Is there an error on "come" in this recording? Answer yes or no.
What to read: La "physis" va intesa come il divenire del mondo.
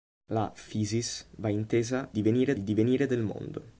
yes